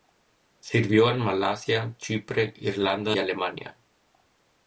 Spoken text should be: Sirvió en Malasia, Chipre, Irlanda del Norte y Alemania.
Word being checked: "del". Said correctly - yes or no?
no